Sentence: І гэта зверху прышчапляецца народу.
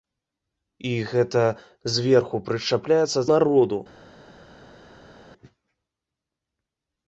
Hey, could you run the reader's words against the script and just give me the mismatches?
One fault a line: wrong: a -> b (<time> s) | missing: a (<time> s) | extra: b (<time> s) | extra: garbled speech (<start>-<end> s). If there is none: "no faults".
no faults